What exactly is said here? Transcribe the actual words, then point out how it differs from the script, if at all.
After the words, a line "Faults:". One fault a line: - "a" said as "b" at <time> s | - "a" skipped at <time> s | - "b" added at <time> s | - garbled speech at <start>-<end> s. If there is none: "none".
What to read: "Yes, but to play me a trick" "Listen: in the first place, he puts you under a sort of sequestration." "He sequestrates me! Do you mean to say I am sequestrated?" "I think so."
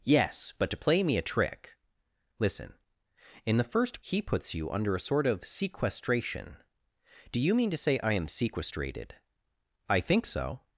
"Yes, but to play me a trick" "Listen: in the first he puts you under a sort of sequestration! "Do you mean to say I am sequestrated?" "I think so."
Faults:
- "place" skipped at 4.0 s
- "He sequestrates me" skipped at 6.6 s